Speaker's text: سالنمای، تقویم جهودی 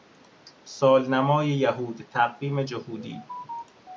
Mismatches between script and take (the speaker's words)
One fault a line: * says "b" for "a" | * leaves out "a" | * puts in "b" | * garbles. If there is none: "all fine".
* puts in "یهود"